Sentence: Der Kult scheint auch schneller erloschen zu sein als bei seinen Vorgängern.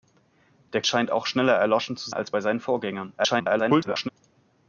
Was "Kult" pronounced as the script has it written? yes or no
no